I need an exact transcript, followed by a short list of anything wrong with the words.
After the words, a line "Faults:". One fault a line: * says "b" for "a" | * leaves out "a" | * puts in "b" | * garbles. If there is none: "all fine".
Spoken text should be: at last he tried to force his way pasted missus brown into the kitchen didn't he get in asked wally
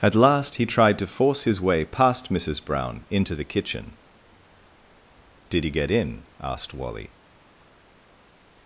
at last he tried to force his way past missus brown into the kitchen did he get in asked wally
Faults:
* says "past" for "pasted"
* says "did" for "didn't"